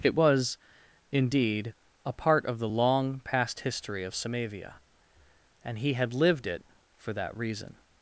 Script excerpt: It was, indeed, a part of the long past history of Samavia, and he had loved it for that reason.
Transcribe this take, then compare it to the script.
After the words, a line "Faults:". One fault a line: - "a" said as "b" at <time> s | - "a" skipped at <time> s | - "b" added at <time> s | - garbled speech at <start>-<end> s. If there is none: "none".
It was, indeed, a part of the long past history of Samavia, and he had lived it for that reason.
Faults:
- "loved" said as "lived" at 6.1 s